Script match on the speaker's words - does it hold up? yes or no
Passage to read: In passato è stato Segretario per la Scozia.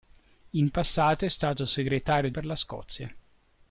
yes